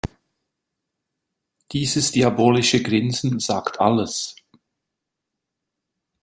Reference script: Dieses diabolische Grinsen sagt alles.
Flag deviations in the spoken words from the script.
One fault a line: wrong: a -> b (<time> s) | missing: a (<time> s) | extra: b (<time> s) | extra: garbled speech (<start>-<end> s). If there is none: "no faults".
no faults